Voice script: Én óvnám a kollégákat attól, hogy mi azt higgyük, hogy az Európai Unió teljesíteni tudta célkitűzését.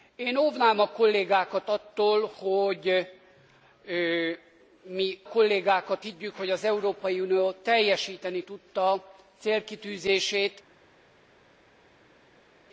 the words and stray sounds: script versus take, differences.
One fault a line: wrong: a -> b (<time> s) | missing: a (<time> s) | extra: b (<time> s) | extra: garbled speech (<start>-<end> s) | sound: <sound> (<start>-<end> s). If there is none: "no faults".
wrong: azt -> kollégákat (5.3 s)